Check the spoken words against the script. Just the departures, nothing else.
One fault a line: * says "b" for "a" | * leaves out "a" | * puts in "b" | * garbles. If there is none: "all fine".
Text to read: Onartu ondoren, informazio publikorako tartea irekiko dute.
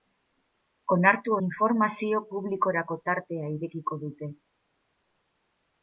* leaves out "ondoren"